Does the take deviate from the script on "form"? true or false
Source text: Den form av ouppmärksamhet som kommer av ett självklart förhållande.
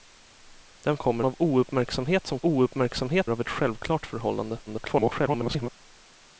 true